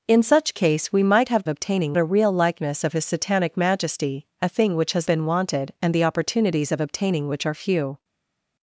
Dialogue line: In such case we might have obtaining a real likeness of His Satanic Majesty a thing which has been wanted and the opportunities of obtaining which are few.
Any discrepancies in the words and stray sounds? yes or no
no